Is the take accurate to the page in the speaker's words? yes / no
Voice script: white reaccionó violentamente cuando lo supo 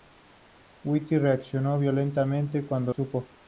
no